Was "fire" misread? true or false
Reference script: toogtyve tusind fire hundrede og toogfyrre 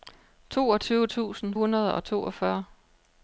true